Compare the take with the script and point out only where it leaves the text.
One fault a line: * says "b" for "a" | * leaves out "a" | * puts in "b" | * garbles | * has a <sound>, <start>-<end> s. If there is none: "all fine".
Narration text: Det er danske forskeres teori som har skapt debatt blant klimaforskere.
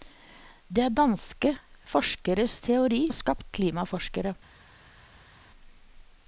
* leaves out "som"
* leaves out "debatt blant"